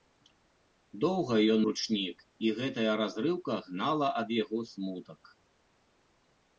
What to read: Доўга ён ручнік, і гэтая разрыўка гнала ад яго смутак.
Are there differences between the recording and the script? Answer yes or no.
no